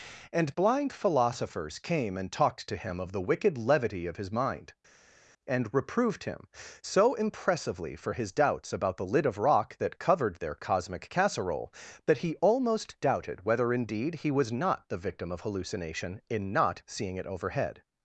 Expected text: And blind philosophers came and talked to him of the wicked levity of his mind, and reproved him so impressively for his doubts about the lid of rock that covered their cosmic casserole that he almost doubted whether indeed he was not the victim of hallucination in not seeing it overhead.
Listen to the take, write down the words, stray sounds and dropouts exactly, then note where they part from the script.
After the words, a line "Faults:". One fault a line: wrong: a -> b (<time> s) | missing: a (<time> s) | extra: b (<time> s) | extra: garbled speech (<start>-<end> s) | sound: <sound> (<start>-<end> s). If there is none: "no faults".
And blind philosophers came and talked to him of the wicked levity of his mind, and reproved him so impressively for his doubts about the lid of rock that covered their cosmic casserole that he almost doubted whether indeed he was not the victim of hallucination in not seeing it overhead.
Faults:
no faults